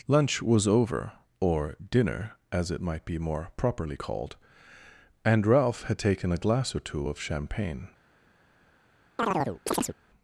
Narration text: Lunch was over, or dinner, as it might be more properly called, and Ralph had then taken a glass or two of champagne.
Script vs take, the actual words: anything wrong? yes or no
yes